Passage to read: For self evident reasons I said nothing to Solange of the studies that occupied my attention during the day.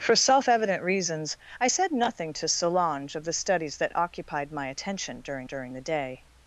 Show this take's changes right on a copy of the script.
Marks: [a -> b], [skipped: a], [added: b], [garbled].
For self evident reasons I said nothing to Solange of the studies that occupied my attention during [added: during] the day.